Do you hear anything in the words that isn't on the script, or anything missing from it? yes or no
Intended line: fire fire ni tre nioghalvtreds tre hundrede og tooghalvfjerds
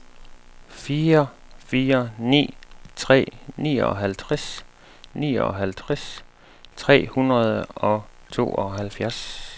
yes